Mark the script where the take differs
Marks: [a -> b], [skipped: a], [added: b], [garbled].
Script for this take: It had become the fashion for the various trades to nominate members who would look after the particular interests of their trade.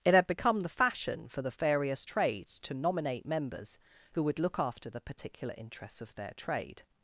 It had become the fashion for the various trades to nominate members who would look after the particular interests of their trade.